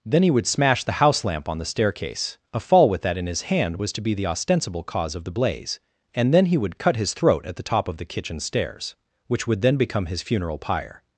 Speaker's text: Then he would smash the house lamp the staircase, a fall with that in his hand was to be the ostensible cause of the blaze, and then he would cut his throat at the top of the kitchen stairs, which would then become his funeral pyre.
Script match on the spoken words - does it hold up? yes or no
no